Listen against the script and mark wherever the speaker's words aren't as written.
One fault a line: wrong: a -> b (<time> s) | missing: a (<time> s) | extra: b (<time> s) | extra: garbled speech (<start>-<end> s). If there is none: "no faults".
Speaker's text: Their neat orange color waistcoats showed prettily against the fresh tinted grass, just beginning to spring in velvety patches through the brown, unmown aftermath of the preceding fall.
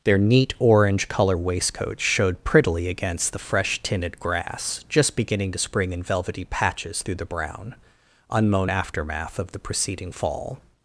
no faults